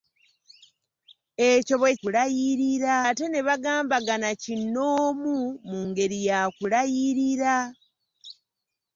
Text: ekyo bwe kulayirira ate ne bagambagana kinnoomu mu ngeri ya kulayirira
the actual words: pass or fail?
pass